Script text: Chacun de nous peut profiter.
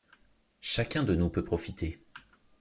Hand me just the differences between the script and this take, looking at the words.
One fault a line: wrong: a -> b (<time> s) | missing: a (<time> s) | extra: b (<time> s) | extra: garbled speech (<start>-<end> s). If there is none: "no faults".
no faults